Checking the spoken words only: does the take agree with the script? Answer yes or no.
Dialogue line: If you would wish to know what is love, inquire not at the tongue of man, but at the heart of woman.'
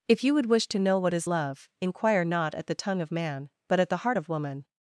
yes